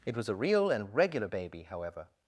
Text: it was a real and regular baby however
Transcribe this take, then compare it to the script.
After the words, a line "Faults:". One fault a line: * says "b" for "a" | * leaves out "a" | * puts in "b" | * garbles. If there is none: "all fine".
it was a real and regular baby however
Faults:
all fine